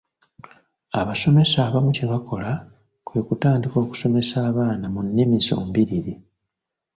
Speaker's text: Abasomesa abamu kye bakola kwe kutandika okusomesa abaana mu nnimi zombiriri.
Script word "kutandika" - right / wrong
right